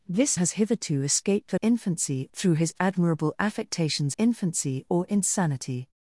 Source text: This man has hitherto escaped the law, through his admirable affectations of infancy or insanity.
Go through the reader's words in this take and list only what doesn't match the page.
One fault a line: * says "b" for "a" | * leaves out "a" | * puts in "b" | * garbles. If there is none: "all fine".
* leaves out "man"
* says "infancy" for "law"
* leaves out "of"